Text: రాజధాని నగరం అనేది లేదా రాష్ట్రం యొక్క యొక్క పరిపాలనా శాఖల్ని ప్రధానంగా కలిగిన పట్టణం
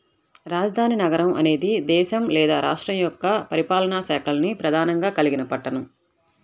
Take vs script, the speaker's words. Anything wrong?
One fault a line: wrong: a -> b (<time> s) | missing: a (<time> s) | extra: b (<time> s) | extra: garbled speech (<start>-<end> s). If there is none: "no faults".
extra: దేశం (1.9 s)
missing: యొక్క (3.3 s)